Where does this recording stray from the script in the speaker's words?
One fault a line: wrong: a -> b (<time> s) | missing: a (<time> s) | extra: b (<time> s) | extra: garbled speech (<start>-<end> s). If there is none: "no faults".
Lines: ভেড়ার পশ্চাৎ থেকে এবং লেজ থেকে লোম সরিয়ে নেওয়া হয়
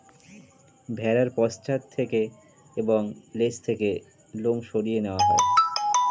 no faults